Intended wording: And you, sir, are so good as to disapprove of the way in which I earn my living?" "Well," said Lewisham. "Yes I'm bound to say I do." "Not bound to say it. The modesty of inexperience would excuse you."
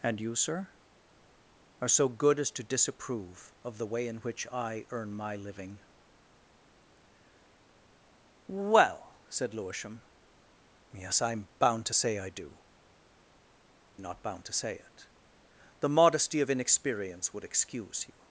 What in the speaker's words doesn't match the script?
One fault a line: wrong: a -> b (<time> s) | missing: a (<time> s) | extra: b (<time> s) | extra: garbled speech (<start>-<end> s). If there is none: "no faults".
no faults